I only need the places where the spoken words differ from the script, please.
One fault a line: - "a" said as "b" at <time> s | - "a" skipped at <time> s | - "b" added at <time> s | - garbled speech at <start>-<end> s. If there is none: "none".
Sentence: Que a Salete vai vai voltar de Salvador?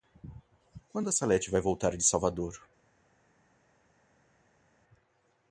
- "Que" said as "Quando" at 0.9 s
- "vai" skipped at 1.6 s